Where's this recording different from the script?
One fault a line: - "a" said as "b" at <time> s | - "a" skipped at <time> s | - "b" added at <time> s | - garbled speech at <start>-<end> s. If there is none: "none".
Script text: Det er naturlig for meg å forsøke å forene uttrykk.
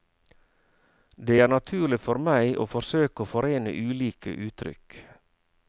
- "ulike" added at 3.7 s